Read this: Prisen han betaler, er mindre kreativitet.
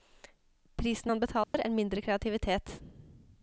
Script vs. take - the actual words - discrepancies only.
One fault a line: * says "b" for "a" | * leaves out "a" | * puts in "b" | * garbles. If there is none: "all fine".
all fine